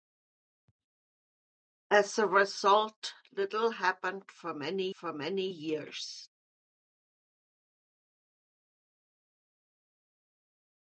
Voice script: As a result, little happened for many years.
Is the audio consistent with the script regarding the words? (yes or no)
no